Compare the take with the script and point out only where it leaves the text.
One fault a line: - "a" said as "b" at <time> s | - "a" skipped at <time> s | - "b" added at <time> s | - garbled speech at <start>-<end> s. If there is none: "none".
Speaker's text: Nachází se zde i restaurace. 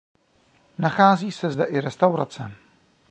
none